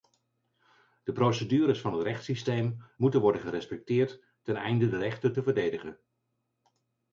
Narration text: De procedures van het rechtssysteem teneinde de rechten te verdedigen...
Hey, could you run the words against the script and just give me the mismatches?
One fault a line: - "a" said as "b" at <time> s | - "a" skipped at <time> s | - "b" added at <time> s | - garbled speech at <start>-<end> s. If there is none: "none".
- "moeten worden gerespecteerd" added at 3.0 s